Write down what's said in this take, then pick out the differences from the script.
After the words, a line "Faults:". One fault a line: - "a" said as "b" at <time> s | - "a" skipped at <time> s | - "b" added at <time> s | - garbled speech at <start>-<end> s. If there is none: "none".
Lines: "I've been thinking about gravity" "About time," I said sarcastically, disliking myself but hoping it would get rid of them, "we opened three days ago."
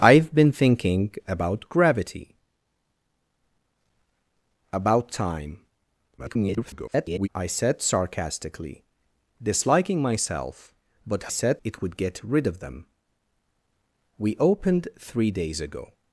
"I've been thinking about gravity" "About time," [garbled] I said sarcastically, disliking myself but said it would get rid of them, "we opened three days ago."
Faults:
- garbled speech at 6.2-7.3 s
- "hoping" said as "said" at 11.3 s